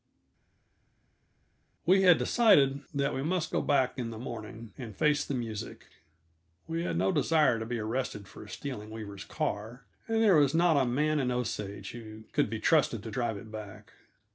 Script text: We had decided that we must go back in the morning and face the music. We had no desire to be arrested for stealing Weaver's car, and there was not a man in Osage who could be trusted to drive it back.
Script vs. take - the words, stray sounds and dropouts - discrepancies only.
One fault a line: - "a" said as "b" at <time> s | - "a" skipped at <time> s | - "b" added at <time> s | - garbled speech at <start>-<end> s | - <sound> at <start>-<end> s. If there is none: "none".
none